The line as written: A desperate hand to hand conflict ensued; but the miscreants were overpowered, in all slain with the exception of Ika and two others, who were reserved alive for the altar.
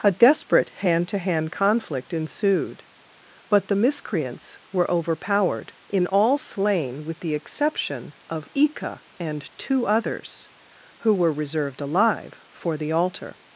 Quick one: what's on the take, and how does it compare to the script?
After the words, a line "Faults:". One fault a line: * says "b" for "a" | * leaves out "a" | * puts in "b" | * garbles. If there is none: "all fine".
A desperate hand to hand conflict ensued; but the miscreants were overpowered, in all slain with the exception of Ika and two others, who were reserved alive for the altar.
Faults:
all fine